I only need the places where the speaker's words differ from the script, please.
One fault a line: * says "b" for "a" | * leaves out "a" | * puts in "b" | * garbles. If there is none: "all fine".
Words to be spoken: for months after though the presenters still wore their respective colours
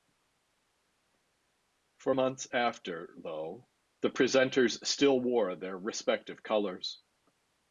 all fine